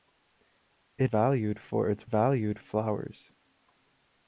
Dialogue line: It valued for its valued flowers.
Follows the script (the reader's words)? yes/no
yes